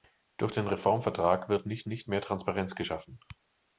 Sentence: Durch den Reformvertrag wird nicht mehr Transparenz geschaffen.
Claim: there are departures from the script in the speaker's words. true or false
true